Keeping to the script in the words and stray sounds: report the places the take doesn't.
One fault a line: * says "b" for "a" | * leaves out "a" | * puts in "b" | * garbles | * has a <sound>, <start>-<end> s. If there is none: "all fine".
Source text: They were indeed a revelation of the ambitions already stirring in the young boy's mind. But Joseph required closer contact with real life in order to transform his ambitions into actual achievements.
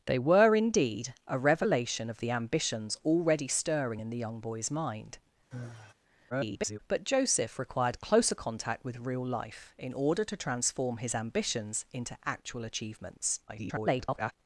* has a sigh, 5.5-5.9 s
* garbles
* garbles